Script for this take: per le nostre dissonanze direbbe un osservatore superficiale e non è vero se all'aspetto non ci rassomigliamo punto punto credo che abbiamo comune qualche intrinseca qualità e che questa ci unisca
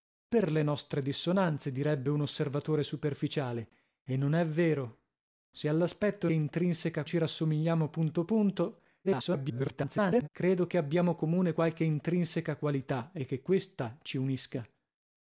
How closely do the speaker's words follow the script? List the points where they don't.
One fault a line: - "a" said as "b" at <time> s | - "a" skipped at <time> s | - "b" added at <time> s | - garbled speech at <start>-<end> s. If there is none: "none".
- "non" said as "intrinseca" at 6.3 s
- garbled speech at 9.0-10.3 s